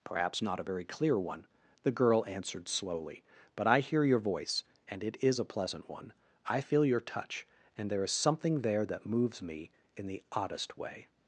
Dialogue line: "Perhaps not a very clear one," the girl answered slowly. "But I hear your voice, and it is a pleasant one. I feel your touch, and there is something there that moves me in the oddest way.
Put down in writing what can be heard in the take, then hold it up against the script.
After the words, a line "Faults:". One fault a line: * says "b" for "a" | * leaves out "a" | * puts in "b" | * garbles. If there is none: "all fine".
"Perhaps not a very clear one," the girl answered slowly. "But I hear your voice, and it is a pleasant one. I feel your touch, and there is something there that moves me in the oddest way.
Faults:
all fine